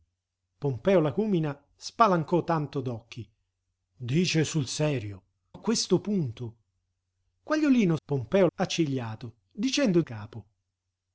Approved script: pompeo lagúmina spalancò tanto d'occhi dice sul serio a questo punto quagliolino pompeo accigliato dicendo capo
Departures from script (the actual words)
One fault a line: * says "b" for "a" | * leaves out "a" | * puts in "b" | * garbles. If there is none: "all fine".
all fine